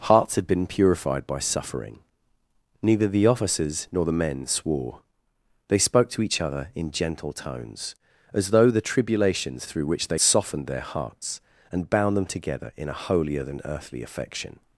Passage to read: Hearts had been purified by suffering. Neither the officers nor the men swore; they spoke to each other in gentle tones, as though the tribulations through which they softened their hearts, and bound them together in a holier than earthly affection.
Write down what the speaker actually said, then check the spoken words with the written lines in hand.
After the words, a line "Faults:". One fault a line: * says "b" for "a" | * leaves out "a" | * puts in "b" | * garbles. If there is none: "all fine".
Hearts had been purified by suffering. Neither the officers nor the men swore; they spoke to each other in gentle tones, as though the tribulations through which they softened their hearts, and bound them together in a holier than earthly affection.
Faults:
all fine